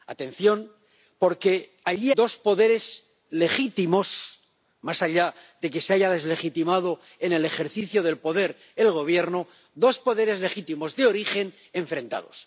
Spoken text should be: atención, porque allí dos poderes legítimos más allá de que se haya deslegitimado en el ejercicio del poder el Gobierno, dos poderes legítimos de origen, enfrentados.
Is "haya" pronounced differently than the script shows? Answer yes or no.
no